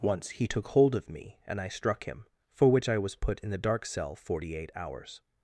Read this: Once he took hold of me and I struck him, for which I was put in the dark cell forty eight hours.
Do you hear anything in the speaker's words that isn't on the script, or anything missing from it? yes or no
no